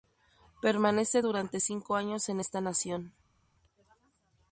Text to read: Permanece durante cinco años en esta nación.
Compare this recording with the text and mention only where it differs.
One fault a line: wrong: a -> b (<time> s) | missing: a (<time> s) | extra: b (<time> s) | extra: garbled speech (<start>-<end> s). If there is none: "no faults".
no faults